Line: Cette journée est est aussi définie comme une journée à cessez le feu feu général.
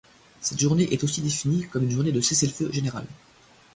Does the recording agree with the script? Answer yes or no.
no